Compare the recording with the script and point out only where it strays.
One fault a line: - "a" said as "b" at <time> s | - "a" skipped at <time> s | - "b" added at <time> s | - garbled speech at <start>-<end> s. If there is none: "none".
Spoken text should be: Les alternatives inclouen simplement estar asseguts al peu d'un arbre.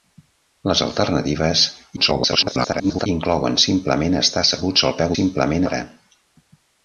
- garbled speech at 2.0-3.1 s
- "d'un" said as "simplement" at 5.1 s